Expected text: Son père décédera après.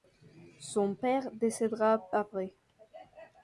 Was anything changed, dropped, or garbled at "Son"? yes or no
no